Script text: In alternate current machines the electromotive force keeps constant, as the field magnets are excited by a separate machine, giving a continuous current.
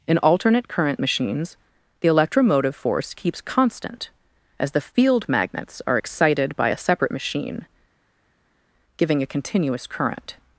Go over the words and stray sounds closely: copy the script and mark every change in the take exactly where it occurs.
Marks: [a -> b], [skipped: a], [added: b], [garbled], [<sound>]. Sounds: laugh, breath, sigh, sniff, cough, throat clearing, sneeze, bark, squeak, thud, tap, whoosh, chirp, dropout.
In alternate current machines the electromotive force keeps constant, as the field magnets are excited by a separate machine, giving a continuous current.